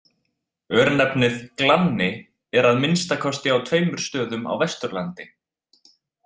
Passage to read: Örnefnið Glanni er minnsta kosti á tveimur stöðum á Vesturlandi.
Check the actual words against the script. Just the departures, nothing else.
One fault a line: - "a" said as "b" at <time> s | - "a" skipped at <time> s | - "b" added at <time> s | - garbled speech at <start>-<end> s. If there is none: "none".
- "að" added at 2.7 s